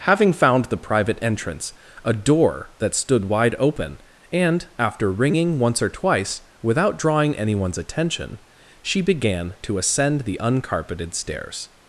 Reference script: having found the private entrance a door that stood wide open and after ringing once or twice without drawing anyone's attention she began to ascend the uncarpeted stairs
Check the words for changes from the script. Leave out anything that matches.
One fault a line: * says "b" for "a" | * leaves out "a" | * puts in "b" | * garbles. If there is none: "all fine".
all fine